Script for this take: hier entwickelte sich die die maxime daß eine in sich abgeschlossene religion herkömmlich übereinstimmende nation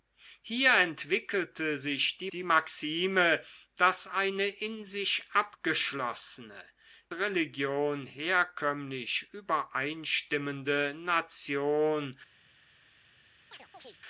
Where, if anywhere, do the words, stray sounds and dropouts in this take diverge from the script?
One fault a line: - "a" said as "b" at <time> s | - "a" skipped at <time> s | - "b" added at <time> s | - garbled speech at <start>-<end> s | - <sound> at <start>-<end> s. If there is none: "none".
- chirp at 13.5-14.0 s